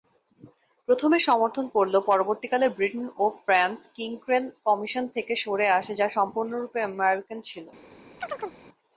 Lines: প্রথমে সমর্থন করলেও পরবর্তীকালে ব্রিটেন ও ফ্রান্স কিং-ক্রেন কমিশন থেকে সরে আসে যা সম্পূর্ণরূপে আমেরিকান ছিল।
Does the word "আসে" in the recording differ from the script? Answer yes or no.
no